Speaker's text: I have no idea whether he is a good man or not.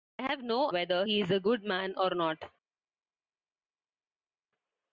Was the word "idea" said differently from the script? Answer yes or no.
yes